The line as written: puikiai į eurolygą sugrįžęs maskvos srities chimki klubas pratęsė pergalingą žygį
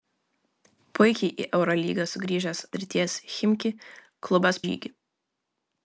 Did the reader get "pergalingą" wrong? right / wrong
wrong